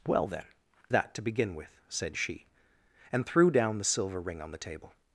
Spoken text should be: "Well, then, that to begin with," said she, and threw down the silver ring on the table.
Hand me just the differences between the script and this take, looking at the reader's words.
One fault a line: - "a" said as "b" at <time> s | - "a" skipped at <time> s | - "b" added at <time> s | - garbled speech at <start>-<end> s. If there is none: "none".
none